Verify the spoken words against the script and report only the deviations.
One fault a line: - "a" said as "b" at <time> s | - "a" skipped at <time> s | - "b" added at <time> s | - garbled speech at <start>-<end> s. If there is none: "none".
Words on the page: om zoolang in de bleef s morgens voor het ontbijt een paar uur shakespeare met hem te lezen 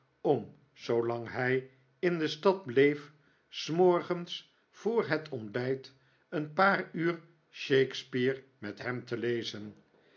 - "hij" added at 1.3 s
- "stad" added at 2.3 s